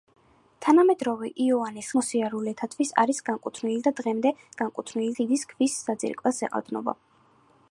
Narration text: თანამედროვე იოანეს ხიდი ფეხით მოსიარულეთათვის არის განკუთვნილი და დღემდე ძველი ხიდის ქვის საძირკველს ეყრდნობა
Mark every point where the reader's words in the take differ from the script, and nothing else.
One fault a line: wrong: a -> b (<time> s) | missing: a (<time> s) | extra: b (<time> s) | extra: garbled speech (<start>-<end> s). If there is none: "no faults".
missing: ხიდი ფეხით (1.9 s)
wrong: ძველი -> განკუთვნილი (4.6 s)